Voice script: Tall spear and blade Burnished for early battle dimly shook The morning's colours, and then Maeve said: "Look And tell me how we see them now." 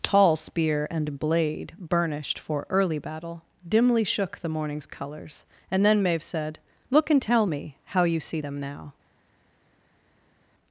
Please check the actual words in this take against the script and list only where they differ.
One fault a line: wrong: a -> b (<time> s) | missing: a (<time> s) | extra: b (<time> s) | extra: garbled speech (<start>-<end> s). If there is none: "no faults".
wrong: we -> you (8.0 s)